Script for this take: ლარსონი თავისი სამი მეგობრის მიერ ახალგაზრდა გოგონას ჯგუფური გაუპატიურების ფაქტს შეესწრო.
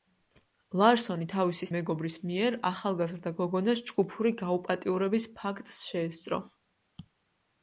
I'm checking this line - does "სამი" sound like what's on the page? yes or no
no